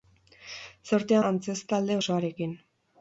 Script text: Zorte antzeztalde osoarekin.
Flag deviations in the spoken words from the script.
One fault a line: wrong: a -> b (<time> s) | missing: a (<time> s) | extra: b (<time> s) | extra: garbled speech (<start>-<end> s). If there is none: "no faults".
no faults